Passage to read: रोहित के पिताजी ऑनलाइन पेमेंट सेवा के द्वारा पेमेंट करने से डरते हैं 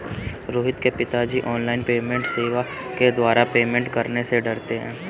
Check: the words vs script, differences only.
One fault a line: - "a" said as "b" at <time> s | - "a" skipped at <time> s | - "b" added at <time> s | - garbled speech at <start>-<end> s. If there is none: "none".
none